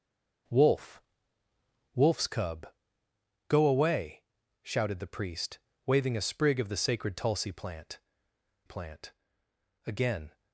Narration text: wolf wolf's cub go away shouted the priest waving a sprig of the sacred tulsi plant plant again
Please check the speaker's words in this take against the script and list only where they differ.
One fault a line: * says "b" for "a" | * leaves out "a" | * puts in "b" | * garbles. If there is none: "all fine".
all fine